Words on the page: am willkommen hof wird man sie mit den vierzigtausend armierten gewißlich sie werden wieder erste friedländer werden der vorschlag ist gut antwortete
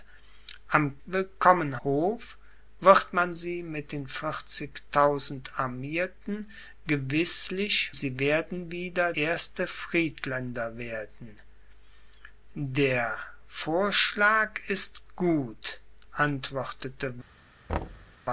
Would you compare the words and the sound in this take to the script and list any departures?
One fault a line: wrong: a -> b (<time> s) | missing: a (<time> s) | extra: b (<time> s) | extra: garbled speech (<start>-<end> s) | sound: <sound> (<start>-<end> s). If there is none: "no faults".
sound: thud (17.7-18.2 s)